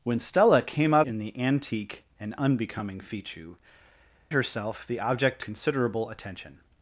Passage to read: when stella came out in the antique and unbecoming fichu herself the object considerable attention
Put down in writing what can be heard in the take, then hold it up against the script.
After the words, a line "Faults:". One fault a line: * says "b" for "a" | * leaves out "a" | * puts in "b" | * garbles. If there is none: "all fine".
when stella came out in the antique and unbecoming fichu herself the object considerable attention
Faults:
all fine